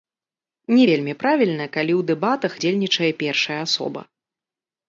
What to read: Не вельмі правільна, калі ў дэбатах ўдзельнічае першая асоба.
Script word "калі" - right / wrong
right